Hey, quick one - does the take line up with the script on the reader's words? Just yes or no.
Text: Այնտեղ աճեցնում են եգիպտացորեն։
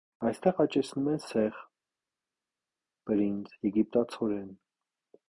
no